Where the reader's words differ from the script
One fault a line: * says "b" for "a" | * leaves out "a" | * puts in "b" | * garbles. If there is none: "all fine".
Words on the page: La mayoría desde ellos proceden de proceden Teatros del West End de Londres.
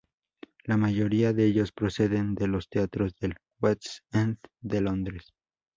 * says "de" for "desde"
* says "los" for "proceden"